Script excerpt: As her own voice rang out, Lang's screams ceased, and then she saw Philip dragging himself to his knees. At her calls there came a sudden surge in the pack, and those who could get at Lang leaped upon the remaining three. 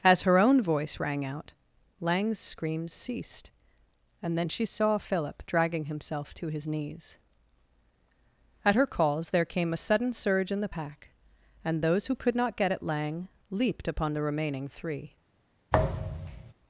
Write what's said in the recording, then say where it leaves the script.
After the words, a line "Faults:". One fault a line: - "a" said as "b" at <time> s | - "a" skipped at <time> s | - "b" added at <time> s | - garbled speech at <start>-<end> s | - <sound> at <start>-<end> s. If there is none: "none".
As her own voice rang out, Lang's screams ceased, and then she saw Philip dragging himself to his knees. At her calls there came a sudden surge in the pack, and those who could not get at Lang leaped upon the remaining three.
Faults:
- "not" added at 12.4 s
- thud at 15.7-16.5 s